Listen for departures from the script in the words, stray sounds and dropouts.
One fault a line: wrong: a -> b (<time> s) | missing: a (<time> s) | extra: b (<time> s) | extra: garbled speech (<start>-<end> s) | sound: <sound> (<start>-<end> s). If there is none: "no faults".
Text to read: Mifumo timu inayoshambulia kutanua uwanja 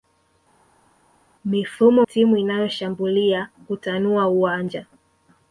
no faults